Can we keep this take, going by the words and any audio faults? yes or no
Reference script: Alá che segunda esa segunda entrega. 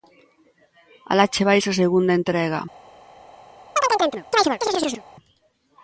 no